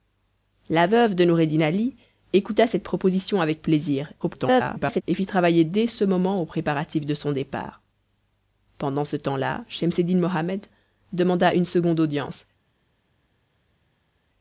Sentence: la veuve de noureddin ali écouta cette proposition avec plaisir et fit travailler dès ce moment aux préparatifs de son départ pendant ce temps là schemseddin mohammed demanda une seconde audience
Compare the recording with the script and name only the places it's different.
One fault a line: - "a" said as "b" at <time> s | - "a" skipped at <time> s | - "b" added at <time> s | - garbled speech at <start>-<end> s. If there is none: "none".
- garbled speech at 4.2-5.0 s